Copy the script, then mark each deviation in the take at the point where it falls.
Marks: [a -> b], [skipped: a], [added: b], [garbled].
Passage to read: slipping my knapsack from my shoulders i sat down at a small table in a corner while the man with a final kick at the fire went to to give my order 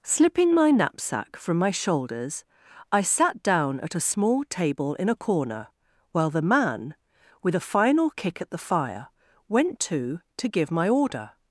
slipping my knapsack from my shoulders i sat down at a small table in a corner while the man with a final kick at the fire went to to give my order